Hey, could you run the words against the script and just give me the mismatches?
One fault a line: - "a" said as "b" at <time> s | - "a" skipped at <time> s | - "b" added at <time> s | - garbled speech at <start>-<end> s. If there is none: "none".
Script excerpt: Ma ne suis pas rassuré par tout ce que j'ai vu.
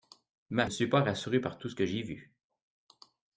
none